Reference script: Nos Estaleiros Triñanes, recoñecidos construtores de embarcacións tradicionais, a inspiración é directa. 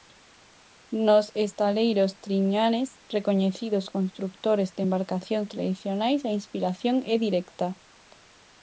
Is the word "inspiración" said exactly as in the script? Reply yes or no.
yes